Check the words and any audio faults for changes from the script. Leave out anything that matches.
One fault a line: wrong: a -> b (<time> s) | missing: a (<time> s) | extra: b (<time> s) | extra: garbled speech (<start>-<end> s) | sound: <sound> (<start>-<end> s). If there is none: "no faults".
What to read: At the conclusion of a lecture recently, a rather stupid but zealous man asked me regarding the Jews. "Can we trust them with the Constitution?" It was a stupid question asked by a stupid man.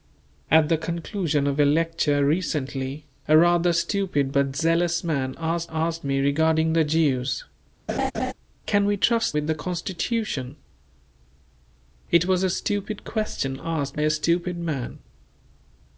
extra: asked (5.7 s)
sound: laugh (7.9-8.3 s)
missing: them (9.4 s)
missing: by (14.0 s)